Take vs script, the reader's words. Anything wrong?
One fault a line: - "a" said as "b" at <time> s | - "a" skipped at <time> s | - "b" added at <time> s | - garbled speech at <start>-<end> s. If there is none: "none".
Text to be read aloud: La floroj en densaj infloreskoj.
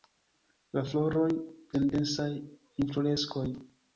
none